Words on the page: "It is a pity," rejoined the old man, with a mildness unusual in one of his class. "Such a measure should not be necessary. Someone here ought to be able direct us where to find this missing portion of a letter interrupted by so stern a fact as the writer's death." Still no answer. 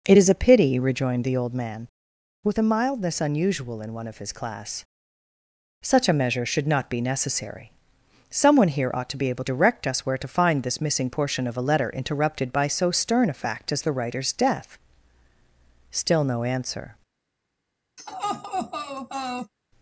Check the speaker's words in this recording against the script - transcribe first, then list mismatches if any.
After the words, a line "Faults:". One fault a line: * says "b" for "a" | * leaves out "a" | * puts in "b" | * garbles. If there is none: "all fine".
"It is a pity," rejoined the old man, with a mildness unusual in one of his class. "Such a measure should not be necessary. Someone here ought to be able direct us where to find this missing portion of a letter interrupted by so stern a fact as the writer's death." Still no answer.
Faults:
all fine